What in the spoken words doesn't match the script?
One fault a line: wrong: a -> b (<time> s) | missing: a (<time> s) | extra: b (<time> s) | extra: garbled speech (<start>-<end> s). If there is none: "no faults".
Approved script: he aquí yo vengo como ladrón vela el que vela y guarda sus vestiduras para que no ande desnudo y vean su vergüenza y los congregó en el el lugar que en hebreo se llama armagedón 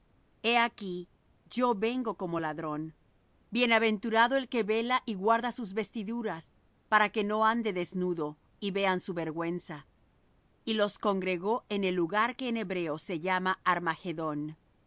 wrong: vela -> bienaventurado (3.5 s)
missing: el (12.0 s)